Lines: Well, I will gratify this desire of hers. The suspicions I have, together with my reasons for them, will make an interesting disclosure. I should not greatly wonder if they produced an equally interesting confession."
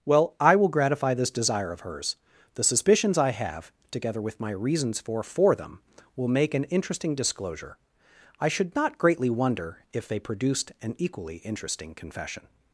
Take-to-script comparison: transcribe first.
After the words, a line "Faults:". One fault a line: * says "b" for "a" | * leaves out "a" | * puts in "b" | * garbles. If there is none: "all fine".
Well, I will gratify this desire of hers. The suspicions I have, together with my reasons for for them, will make an interesting disclosure. I should not greatly wonder if they produced an equally interesting confession."
Faults:
* puts in "for"